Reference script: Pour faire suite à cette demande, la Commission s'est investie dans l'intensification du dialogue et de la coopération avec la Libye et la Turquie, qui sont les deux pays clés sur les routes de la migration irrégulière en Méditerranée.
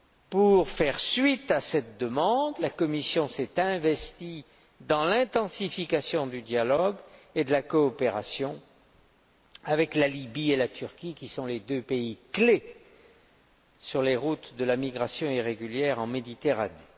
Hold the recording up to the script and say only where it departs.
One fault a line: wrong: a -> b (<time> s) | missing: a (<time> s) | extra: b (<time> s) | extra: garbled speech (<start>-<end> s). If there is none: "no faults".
no faults